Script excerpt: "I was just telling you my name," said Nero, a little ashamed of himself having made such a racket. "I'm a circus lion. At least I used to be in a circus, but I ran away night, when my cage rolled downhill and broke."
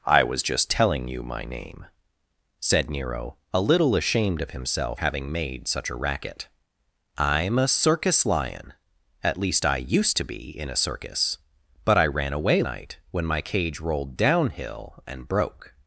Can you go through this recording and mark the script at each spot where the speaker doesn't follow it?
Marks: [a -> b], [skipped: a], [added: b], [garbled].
"I was just telling you my name," said Nero, a little ashamed of himself having made such a racket. "I'm a circus lion. At least I used to be in a circus, but I ran away night, when my cage rolled downhill and broke."